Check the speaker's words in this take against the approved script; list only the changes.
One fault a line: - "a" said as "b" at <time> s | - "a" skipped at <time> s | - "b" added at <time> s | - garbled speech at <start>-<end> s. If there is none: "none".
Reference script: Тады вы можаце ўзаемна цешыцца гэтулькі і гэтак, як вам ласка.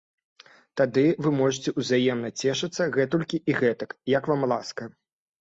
none